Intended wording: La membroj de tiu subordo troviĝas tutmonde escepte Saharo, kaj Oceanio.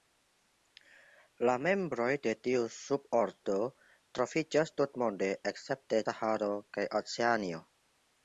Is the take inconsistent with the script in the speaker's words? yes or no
no